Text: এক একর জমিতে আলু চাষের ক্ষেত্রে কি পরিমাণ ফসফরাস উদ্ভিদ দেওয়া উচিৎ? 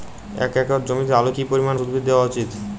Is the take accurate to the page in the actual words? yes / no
no